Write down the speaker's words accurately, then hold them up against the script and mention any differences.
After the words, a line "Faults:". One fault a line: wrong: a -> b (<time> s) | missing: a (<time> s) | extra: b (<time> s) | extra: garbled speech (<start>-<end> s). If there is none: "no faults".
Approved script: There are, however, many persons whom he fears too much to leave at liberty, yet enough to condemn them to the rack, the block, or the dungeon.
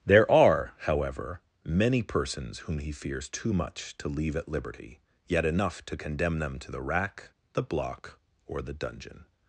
There are, however, many persons whom he fears too much to leave at liberty, yet enough to condemn them to the rack, the block, or the dungeon.
Faults:
no faults